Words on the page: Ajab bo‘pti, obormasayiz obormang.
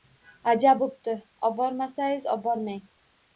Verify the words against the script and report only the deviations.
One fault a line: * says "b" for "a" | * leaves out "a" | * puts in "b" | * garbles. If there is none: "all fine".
all fine